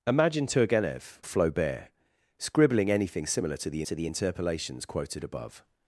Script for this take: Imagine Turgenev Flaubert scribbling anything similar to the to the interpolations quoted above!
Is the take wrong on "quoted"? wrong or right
right